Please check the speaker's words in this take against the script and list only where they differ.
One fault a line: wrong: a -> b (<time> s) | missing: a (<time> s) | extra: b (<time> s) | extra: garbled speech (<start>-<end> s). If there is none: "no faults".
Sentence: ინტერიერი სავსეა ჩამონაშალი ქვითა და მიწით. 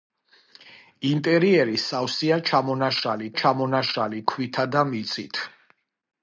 extra: ჩამონაშალი (3.4 s)